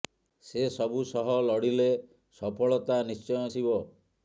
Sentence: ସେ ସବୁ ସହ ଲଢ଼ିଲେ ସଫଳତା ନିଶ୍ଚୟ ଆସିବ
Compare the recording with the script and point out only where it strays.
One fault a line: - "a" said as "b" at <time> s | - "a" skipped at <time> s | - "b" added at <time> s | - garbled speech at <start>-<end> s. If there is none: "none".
none